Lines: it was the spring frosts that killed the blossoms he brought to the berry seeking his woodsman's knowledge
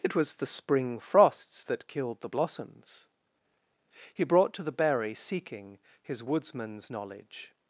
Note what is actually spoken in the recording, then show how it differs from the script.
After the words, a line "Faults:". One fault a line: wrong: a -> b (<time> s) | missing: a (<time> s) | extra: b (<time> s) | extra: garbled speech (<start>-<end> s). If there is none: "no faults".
it was the spring frosts that killed the blossoms he brought to the berry seeking his woodsman's knowledge
Faults:
no faults